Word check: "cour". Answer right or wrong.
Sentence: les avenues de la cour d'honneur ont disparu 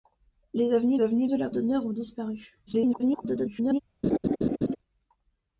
wrong